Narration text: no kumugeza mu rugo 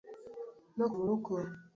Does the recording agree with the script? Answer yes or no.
no